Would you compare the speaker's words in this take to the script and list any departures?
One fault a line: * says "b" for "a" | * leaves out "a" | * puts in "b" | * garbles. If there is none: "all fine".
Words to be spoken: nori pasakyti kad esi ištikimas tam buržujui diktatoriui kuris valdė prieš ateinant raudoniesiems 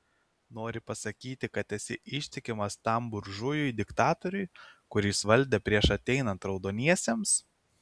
all fine